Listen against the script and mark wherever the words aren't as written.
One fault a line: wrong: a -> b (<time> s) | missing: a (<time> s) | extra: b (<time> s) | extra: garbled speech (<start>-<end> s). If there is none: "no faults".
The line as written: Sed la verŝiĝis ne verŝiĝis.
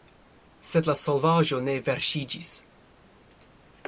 wrong: verŝiĝis -> solvaĵo (1.0 s)